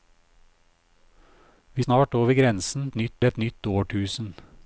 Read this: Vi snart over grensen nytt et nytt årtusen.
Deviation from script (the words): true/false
false